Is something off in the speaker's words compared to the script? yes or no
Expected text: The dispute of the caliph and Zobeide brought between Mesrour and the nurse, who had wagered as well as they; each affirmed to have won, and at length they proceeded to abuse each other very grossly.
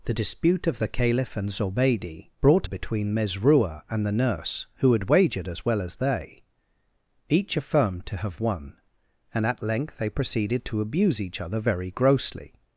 no